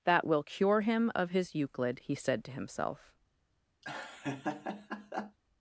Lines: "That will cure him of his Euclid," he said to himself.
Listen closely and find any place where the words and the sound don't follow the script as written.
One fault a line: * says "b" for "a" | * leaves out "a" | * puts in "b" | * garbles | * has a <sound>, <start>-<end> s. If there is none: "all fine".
* has a laugh, 3.8-5.4 s